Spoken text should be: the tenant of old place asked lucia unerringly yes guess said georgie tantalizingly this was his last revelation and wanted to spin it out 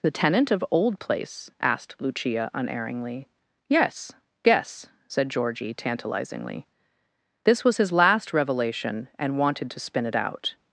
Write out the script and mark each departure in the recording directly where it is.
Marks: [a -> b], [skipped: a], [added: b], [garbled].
the tenant of old place asked lucia unerringly yes guess said georgie tantalizingly this was his last revelation and wanted to spin it out